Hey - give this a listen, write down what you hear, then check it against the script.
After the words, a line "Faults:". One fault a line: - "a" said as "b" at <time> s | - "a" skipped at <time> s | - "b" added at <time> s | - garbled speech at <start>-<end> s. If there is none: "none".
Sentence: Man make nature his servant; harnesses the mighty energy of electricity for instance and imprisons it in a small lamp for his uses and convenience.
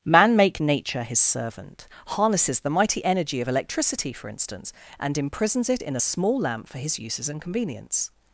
Man make nature his servant; harnesses the mighty energy of electricity for instance and imprisons it in a small lamp for his uses and convenience.
Faults:
none